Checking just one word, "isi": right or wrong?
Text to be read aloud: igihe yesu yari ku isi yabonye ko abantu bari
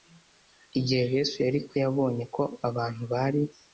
wrong